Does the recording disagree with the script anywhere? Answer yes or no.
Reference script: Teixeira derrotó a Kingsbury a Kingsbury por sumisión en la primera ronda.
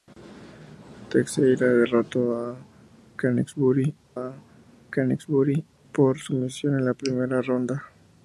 no